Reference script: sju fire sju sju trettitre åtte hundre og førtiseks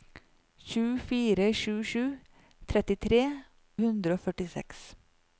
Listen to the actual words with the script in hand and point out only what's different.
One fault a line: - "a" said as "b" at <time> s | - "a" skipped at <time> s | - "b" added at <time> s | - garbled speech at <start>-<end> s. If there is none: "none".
- "åtte" skipped at 3.2 s